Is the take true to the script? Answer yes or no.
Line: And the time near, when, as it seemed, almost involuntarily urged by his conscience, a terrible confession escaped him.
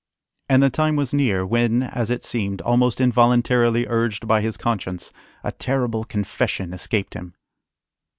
no